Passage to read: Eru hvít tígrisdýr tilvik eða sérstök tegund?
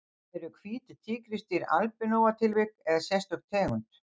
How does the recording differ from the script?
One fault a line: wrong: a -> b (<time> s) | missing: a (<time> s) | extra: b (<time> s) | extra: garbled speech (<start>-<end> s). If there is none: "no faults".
extra: albinóa (1.8 s)